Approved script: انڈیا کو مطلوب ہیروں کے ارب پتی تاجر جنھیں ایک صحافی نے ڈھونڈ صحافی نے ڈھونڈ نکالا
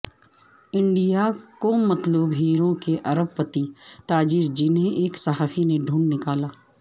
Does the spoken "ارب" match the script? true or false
true